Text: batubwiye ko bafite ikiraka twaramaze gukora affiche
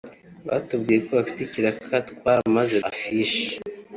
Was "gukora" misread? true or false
true